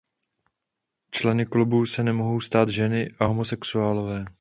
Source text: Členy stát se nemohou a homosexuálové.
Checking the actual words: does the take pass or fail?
fail